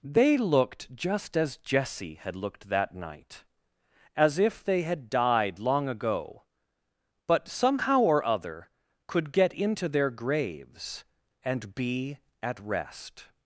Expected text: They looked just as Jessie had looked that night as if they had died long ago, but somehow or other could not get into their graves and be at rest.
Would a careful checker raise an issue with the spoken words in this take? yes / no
yes